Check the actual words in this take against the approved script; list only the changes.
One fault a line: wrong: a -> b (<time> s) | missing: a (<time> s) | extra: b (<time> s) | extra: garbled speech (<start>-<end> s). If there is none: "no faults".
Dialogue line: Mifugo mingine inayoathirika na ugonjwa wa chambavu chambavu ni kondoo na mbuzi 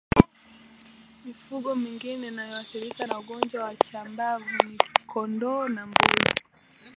missing: chambavu (4.4 s)